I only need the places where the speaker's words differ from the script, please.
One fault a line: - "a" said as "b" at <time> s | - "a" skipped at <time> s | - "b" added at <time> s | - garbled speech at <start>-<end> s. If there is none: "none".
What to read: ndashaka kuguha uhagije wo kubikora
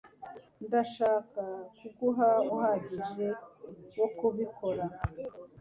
none